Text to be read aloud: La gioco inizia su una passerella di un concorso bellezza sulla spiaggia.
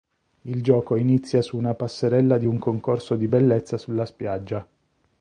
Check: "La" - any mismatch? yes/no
yes